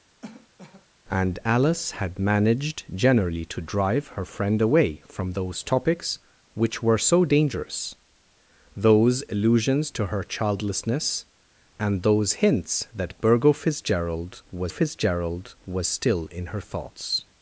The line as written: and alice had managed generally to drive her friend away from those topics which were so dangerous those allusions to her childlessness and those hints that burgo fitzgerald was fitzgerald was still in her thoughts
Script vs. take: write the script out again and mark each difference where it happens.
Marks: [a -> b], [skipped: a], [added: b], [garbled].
and alice had managed generally to drive her friend away from those topics which were so dangerous those allusions to her childlessness and those hints that burgo fitzgerald was fitzgerald was still in her thoughts